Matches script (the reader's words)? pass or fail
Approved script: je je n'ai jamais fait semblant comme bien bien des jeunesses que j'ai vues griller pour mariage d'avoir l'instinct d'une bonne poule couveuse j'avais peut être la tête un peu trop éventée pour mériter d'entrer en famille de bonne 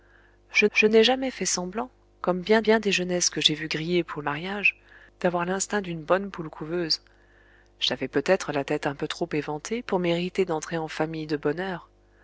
pass